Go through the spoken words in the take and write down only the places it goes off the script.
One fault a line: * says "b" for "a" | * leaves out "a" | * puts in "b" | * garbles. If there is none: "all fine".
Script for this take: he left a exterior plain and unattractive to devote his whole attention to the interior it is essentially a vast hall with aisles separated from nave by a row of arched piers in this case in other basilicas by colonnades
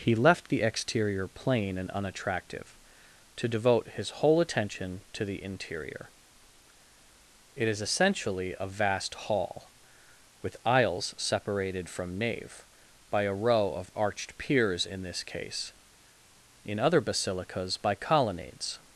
* says "the" for "a"